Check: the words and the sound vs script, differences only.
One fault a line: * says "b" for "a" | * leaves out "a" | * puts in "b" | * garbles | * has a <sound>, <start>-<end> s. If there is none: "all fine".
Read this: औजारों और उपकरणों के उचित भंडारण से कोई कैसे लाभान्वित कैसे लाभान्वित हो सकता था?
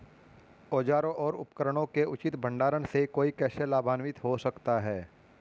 * leaves out "कैसे लाभान्वित"
* says "है" for "था"